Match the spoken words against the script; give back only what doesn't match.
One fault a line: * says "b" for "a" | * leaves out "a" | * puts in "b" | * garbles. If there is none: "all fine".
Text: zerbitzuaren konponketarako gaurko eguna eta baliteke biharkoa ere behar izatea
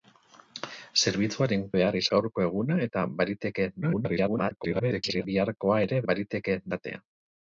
* says "behar" for "konponketarako"
* garbles
* says "baliteke" for "behar"